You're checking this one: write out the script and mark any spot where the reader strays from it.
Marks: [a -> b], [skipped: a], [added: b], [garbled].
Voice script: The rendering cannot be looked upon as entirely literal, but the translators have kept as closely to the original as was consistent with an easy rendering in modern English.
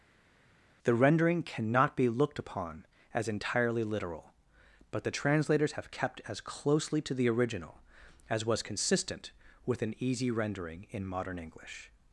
The rendering cannot be looked upon as entirely literal, but the translators have kept as closely to the original as was consistent with an easy rendering in modern English.